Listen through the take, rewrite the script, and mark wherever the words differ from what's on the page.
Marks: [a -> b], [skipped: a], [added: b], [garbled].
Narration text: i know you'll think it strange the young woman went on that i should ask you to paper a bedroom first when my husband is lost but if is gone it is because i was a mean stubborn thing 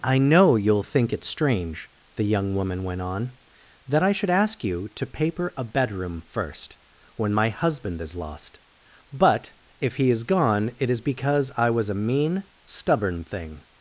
i know you'll think it strange the young woman went on that i should ask you to paper a bedroom first when my husband is lost but if [added: he] is gone it is because i was a mean stubborn thing